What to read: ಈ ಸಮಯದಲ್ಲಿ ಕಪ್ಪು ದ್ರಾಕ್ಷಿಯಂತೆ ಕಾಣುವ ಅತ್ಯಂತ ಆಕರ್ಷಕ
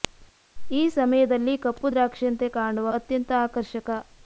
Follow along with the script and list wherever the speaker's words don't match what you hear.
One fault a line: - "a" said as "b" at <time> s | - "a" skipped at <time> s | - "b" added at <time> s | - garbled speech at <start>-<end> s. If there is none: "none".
none